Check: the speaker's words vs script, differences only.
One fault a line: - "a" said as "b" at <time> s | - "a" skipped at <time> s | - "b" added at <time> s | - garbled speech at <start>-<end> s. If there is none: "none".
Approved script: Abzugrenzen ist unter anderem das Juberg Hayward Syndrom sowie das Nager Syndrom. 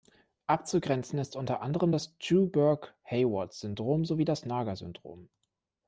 none